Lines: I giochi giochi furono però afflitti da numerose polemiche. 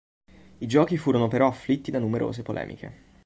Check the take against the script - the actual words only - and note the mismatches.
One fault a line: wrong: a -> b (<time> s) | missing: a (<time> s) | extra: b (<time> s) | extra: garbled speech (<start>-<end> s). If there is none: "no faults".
missing: giochi (1.0 s)